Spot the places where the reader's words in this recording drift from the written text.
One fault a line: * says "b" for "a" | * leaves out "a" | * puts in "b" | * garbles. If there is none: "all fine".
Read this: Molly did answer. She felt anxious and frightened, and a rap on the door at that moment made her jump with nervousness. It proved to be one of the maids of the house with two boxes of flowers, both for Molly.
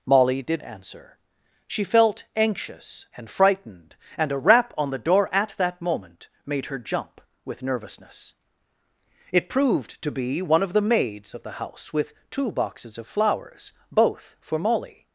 all fine